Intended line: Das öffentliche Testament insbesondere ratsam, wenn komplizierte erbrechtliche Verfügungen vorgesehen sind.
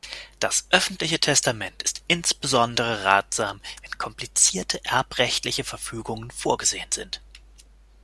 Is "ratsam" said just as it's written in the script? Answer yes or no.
yes